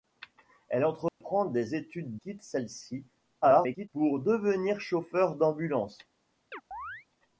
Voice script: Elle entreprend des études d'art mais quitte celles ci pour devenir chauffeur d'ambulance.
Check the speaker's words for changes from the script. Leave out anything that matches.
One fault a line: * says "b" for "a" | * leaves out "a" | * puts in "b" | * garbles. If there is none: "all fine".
* leaves out "d'art mais"
* garbles